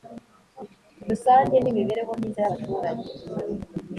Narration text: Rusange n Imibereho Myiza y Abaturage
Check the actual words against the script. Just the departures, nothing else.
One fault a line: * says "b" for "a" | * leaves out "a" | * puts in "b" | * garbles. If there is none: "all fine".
all fine